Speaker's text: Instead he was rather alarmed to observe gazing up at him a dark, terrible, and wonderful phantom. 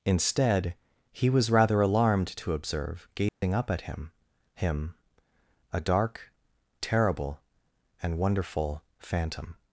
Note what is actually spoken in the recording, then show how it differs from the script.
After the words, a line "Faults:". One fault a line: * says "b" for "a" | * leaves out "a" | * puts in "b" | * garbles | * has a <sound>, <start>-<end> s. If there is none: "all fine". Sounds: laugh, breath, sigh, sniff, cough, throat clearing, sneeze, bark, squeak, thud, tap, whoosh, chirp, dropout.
Instead he was rather alarmed to observe gazing up at him him a dark, terrible, and wonderful phantom.
Faults:
* has a dropout, 3.3-3.4 s
* puts in "him"